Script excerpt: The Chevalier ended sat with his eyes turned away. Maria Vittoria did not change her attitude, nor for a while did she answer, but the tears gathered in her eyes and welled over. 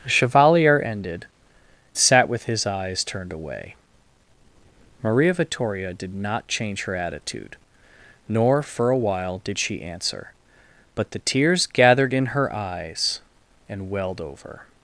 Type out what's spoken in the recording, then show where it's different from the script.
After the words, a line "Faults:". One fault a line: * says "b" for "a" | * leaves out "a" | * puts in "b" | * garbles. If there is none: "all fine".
The Chevalier ended sat with his eyes turned away. Maria Vittoria did not change her attitude, nor for a while did she answer, but the tears gathered in her eyes and welled over.
Faults:
all fine